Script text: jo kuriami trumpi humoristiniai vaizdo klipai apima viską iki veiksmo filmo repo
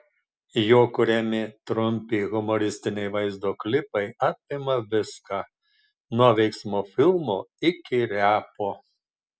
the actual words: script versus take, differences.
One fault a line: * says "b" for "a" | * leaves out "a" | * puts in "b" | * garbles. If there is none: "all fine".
* says "nuo" for "iki"
* puts in "iki"